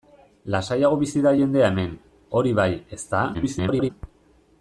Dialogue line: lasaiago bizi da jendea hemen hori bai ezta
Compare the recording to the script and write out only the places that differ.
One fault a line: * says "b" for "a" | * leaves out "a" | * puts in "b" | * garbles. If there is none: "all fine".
* garbles